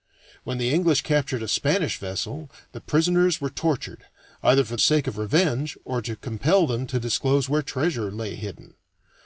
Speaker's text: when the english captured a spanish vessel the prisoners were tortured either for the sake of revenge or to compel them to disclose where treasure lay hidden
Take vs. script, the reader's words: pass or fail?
fail